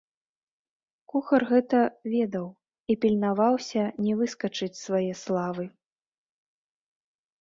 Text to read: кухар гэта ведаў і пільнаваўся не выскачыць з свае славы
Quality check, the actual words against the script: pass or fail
pass